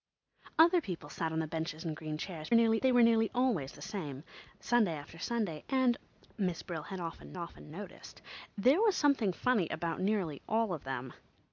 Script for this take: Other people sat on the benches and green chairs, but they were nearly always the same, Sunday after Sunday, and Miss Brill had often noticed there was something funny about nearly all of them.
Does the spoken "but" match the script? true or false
false